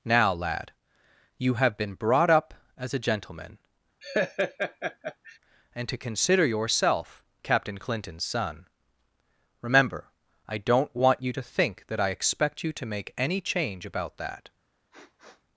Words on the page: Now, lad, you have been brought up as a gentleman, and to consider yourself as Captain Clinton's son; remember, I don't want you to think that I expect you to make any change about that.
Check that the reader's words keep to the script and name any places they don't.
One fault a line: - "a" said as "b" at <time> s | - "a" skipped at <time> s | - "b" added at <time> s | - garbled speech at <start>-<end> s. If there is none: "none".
- "as" skipped at 7.2 s